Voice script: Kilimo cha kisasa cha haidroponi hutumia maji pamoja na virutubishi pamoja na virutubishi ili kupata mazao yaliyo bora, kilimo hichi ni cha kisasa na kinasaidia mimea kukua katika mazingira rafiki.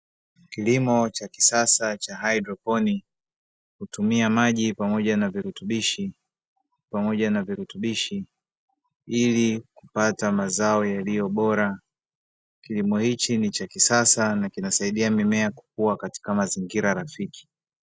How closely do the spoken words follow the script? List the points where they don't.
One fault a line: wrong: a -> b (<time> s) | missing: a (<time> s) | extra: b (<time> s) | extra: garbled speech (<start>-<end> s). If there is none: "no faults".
no faults